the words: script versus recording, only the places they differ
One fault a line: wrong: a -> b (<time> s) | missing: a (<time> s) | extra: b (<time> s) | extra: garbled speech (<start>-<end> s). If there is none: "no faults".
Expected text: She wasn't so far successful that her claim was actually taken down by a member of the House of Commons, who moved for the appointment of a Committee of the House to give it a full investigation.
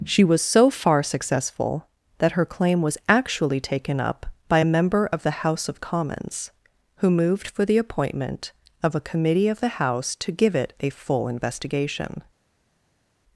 wrong: wasn't -> was (0.2 s)
wrong: down -> up (4.0 s)